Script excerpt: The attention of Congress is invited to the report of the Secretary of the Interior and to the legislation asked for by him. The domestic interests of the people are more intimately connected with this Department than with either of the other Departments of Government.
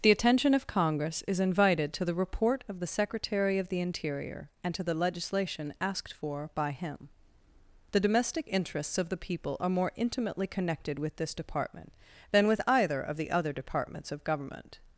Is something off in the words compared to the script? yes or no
no